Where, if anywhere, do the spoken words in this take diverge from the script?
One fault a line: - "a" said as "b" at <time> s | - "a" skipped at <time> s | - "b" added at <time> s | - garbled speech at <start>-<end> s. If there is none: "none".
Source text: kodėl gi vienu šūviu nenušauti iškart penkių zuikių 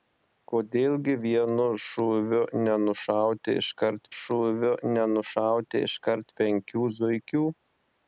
- "šūviu nenušauti iškart" added at 4.2 s